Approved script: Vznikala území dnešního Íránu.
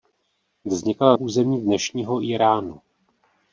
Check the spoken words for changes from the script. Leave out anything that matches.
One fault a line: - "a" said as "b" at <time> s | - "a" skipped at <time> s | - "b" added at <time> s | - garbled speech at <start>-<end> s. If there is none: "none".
none